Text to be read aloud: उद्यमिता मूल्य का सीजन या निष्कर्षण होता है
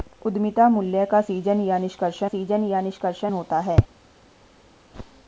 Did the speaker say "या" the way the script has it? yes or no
yes